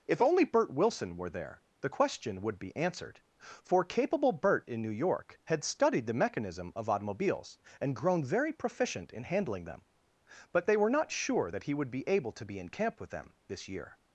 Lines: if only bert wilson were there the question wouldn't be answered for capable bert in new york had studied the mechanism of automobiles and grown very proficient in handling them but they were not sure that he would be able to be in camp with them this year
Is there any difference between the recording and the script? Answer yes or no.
yes